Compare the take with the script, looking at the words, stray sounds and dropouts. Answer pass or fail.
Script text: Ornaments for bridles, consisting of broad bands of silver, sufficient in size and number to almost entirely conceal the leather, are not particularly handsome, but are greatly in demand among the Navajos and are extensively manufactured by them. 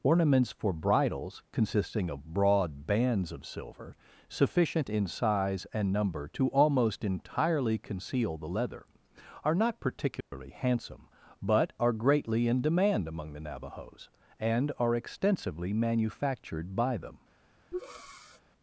fail